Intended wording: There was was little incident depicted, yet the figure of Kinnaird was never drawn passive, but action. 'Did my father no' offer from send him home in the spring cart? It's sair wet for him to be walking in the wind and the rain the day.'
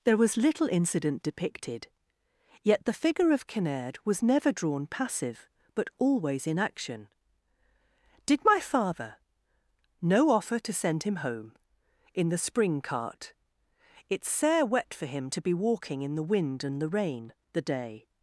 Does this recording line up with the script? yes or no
no